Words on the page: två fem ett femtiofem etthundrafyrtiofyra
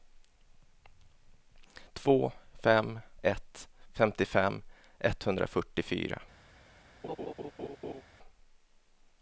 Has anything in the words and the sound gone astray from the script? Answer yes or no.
yes